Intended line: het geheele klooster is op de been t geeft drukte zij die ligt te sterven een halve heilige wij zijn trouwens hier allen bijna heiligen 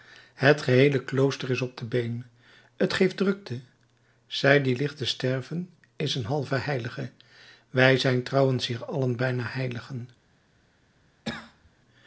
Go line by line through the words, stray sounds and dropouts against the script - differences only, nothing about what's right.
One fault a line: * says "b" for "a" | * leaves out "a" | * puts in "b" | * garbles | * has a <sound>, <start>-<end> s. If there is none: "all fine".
* puts in "is"
* has a cough, 11.3-11.7 s